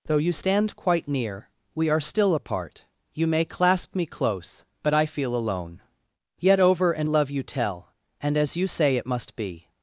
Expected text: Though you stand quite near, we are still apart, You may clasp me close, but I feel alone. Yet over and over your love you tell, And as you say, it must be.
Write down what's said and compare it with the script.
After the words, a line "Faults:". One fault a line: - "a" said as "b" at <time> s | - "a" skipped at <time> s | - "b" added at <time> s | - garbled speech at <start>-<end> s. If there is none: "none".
Though you stand quite near, we are still apart, You may clasp me close, but I feel alone. Yet over and love you tell, And as you say, it must be.
Faults:
- "over your" skipped at 7.1 s